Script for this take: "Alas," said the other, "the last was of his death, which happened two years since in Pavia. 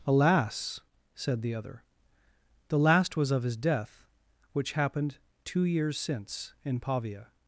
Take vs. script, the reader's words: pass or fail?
pass